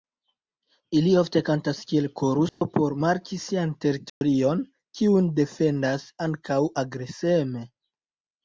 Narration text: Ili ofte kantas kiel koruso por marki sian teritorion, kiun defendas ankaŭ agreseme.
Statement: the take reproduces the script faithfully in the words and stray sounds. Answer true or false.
false